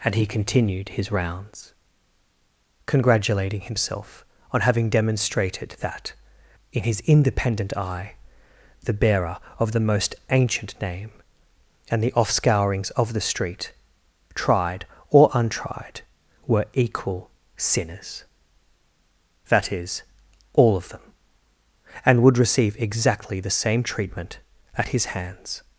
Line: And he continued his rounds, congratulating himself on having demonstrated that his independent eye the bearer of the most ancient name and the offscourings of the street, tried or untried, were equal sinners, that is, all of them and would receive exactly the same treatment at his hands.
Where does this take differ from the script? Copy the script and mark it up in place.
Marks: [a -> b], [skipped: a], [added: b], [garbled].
And he continued his rounds, congratulating himself on having demonstrated that [added: in] his independent eye the bearer of the most ancient name and the offscourings of the street, tried or untried, were equal sinners, that is, all of them and would receive exactly the same treatment at his hands.